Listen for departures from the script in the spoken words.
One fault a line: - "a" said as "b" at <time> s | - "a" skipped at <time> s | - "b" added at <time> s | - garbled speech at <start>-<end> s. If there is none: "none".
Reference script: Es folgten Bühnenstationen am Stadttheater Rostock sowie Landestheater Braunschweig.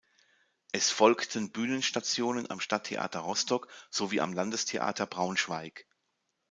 - "am" added at 4.2 s